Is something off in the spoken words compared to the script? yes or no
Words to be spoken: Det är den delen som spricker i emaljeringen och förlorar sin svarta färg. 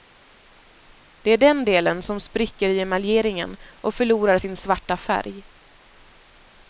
no